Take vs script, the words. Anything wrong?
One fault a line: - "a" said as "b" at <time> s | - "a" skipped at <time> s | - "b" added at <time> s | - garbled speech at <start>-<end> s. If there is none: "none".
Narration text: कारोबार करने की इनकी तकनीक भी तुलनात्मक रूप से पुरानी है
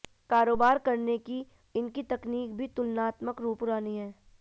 - "से" skipped at 3.6 s